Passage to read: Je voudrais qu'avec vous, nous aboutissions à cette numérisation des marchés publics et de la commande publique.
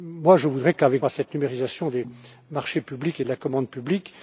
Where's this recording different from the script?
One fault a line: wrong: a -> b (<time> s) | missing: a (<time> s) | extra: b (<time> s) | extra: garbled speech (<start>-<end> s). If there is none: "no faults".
missing: vous nous aboutissions (1.1 s)